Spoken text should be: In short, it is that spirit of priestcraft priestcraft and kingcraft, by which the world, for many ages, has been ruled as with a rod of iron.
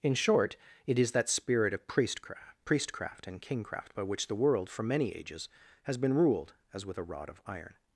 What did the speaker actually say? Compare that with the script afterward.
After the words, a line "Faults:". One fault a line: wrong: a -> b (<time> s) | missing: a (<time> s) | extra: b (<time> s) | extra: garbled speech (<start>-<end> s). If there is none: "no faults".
In short, it is that spirit of priestcraft priestcraft and kingcraft, by which the world, for many ages, has been ruled as with a rod of iron.
Faults:
no faults